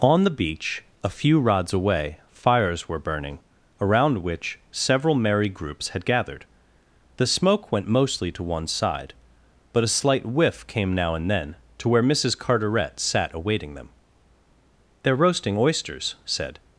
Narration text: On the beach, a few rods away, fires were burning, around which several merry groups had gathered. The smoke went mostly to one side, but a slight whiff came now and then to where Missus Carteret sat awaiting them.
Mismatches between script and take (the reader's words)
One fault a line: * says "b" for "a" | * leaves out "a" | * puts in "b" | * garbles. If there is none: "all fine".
* puts in "They're roasting oysters said"